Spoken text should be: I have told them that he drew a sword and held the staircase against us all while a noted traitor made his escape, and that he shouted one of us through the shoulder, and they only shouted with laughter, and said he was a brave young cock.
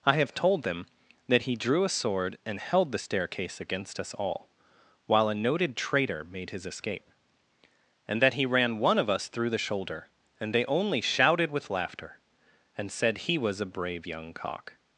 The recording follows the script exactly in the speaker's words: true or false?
false